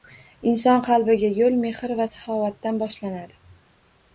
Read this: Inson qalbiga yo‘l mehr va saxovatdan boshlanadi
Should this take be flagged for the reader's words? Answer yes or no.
no